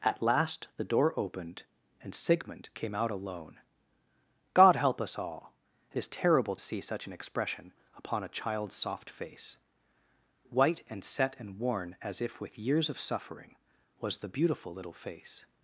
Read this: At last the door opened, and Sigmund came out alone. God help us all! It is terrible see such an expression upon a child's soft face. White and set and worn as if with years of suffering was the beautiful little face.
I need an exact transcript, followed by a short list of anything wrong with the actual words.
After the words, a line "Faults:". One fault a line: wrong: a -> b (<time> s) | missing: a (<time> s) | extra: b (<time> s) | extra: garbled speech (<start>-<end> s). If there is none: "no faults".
At last the door opened, and Sigmund came out alone. God help us all! It is terrible see such an expression upon a child's soft face. White and set and worn as if with years of suffering was the beautiful little face.
Faults:
no faults